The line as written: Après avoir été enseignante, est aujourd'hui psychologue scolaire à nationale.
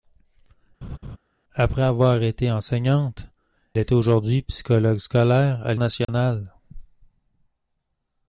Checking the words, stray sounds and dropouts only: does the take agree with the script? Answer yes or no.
no